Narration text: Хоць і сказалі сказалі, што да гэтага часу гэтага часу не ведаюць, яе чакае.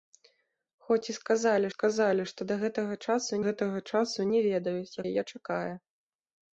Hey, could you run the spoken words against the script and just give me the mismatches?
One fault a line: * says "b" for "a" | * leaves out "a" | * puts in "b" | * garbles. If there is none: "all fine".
all fine